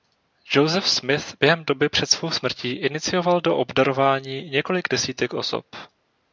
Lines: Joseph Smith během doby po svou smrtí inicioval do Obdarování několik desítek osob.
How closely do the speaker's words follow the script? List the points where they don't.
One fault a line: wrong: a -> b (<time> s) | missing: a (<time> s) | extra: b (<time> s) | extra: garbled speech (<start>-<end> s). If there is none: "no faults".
wrong: po -> před (1.9 s)